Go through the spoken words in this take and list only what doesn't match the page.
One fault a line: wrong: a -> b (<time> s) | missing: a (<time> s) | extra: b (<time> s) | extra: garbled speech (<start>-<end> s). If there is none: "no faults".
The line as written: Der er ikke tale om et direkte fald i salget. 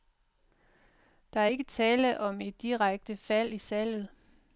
no faults